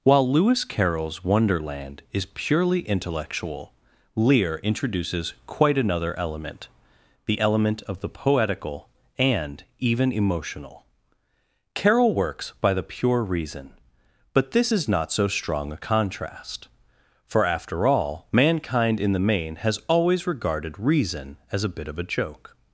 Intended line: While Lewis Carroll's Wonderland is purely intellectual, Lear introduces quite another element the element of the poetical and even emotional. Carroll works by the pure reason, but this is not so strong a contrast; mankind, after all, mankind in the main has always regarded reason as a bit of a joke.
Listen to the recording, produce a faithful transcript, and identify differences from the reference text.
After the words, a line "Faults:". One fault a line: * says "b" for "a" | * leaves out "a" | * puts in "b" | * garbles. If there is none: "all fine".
While Lewis Carroll's Wonderland is purely intellectual, Lear introduces quite another element the element of the poetical and even emotional. Carroll works by the pure reason, but this is not so strong a contrast; for, after all, mankind in the main has always regarded reason as a bit of a joke.
Faults:
* says "for" for "mankind"